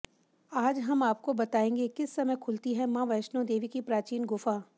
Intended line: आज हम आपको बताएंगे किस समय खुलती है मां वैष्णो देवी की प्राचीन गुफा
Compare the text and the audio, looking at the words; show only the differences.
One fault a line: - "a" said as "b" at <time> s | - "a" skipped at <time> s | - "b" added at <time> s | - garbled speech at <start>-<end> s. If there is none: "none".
none